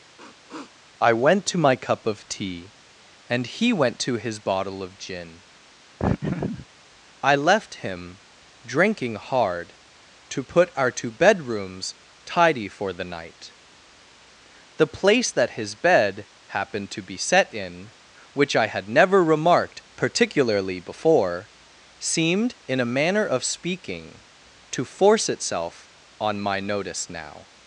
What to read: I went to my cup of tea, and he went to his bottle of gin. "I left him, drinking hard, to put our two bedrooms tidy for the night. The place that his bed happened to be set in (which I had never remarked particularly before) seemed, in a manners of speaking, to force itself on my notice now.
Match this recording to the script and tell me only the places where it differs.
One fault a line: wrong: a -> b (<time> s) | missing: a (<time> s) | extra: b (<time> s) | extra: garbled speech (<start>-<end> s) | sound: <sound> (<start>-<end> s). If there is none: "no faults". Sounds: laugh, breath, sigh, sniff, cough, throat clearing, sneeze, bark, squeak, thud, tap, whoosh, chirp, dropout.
sound: sniff (0.2-0.8 s)
sound: laugh (6.0-6.7 s)
wrong: manners -> manner (22.9 s)